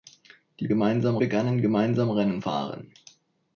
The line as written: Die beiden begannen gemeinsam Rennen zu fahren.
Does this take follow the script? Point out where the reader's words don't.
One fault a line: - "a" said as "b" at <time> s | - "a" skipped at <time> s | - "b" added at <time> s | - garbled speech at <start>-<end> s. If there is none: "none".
- "beiden" said as "gemeinsam" at 0.7 s
- "zu" skipped at 2.4 s